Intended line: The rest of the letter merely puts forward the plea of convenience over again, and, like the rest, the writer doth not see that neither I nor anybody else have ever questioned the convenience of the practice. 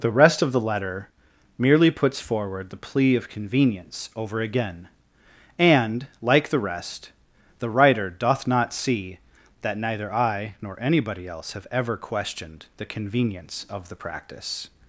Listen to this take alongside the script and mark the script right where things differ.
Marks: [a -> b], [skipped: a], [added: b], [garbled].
The rest of the letter merely puts forward the plea of convenience over again, and, like the rest, the writer doth not see that neither I nor anybody else have ever questioned the convenience of the practice.